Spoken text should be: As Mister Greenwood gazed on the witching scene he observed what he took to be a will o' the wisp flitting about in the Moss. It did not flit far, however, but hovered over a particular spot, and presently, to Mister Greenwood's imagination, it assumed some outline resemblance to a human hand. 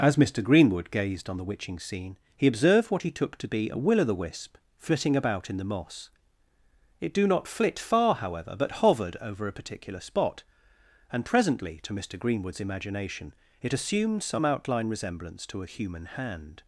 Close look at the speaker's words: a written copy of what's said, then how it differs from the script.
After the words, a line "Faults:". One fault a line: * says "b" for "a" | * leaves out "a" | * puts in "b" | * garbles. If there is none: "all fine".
As Mister Greenwood gazed on the witching scene he observed what he took to be a will o' the wisp flitting about in the Moss. It do not flit far, however, but hovered over a particular spot, and presently, to Mister Greenwood's imagination, it assumed some outline resemblance to a human hand.
Faults:
* says "do" for "did"